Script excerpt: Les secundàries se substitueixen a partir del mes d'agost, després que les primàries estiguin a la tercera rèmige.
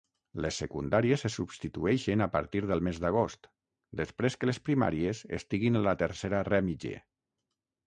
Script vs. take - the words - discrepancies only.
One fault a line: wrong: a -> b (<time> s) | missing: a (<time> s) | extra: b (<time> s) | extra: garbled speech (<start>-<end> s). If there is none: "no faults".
no faults